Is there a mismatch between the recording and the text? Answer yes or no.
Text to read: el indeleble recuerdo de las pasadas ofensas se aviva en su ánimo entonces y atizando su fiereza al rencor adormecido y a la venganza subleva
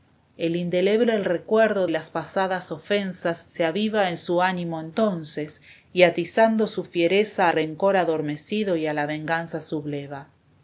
yes